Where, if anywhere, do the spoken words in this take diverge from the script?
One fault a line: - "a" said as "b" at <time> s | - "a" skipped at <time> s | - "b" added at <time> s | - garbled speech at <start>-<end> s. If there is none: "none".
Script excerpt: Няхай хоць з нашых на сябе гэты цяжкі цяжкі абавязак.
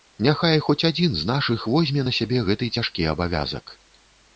- "адзін" added at 0.9 s
- "возьме" added at 1.7 s
- "цяжкі" skipped at 3.1 s